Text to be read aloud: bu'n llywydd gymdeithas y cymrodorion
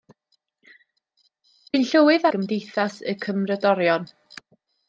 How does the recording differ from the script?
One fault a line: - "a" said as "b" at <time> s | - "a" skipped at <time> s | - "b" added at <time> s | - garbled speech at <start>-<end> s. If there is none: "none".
none